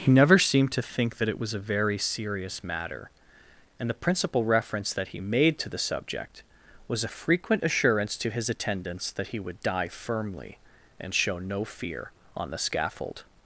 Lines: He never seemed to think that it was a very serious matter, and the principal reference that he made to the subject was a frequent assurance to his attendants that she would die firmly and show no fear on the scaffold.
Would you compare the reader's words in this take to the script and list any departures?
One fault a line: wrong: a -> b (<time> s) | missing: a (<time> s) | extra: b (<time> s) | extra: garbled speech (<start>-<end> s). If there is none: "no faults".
wrong: she -> he (9.3 s)